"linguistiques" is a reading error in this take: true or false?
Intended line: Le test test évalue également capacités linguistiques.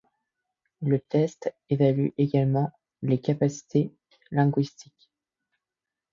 false